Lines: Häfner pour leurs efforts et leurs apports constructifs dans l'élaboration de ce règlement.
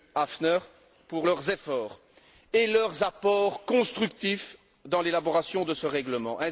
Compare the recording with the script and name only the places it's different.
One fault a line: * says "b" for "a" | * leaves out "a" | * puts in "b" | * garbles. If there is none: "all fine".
all fine